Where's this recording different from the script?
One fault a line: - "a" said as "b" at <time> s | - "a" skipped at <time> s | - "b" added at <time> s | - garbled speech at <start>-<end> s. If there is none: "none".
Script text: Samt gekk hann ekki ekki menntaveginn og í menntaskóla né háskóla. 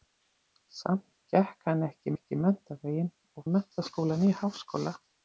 none